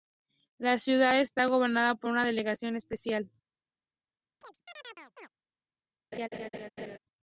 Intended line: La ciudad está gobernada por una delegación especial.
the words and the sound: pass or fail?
fail